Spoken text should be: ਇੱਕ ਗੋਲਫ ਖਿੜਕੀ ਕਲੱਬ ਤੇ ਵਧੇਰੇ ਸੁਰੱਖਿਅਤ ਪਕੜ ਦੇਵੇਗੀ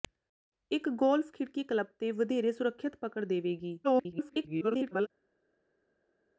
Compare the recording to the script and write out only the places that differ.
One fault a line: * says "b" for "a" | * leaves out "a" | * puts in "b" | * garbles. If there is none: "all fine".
* garbles